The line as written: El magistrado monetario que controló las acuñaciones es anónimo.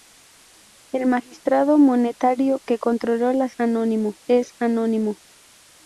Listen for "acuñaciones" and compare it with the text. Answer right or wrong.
wrong